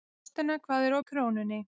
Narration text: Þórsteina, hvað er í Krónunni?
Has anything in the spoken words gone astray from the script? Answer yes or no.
no